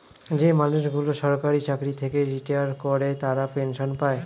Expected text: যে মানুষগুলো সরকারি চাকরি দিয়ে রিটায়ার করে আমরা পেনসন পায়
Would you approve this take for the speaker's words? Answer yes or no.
no